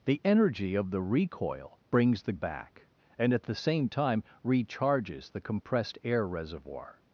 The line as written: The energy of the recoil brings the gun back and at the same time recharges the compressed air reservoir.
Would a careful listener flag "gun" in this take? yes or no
yes